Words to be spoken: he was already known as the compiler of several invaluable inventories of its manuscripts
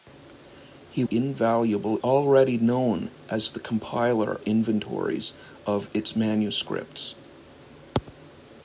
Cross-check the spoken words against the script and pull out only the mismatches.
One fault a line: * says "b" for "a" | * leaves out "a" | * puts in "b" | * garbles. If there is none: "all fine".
* says "invaluable" for "was"
* leaves out "of several invaluable"